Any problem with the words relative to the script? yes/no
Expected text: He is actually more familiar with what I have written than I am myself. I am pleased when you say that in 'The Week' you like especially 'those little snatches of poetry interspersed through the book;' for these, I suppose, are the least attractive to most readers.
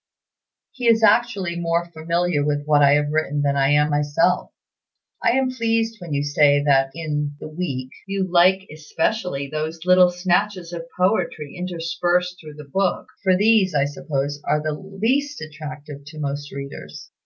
no